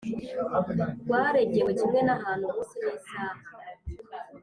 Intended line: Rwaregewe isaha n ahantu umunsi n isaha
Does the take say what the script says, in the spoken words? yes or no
no